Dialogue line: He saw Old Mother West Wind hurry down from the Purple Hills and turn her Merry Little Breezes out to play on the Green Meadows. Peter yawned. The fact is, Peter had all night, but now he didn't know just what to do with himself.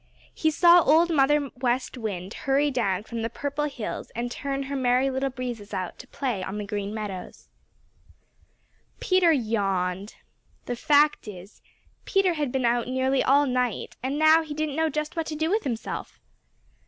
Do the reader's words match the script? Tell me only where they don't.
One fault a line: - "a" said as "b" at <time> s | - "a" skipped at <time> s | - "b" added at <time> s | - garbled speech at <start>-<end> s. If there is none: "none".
- "been out nearly" added at 12.5 s
- "but" said as "and" at 14.0 s